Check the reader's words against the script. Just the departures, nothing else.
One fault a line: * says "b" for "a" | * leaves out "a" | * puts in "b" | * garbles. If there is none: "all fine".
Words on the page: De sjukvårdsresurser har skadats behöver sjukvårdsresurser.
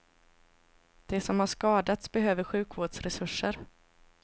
* says "som" for "sjukvårdsresurser"